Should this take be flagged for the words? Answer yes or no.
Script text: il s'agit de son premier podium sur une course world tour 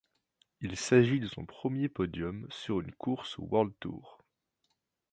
no